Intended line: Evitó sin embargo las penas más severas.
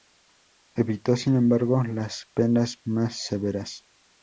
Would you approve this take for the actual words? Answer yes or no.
yes